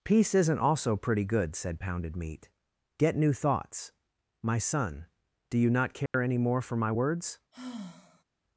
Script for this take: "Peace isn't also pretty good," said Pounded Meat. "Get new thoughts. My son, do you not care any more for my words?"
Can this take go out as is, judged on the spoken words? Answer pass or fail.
pass